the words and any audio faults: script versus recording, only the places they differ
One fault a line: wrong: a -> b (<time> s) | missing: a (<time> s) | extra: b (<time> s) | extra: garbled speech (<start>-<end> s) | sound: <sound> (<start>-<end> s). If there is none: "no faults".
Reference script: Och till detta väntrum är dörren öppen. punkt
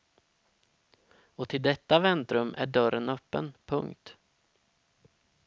no faults